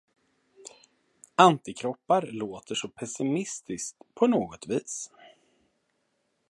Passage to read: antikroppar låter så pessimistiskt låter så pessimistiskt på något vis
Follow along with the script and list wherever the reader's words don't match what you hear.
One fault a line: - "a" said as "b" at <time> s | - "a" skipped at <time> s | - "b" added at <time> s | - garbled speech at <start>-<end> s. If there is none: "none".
- "låter så pessimistiskt" skipped at 4.0 s